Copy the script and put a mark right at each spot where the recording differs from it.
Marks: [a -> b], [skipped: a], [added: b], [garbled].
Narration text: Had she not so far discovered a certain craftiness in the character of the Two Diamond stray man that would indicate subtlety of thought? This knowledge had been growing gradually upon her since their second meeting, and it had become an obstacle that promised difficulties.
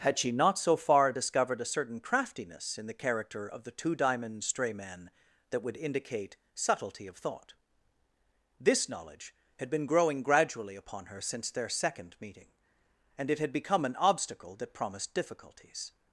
Had she not so far discovered a certain craftiness in the character of the Two Diamond stray man that would indicate subtlety of thought? This knowledge had been growing gradually upon her since their second meeting, and it had become an obstacle that promised difficulties.